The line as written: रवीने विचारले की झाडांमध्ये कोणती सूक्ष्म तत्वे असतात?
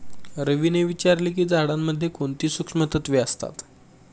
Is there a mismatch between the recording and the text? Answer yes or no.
no